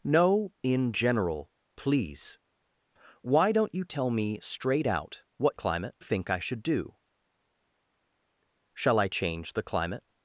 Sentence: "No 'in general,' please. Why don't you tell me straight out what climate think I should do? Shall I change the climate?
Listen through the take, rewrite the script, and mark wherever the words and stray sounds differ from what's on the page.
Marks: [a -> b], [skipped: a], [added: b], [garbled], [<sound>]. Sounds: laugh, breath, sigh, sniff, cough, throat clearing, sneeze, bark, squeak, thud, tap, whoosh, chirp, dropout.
"No 'in general,' please. Why don't you tell me straight out what climate think I should do? Shall I change the climate?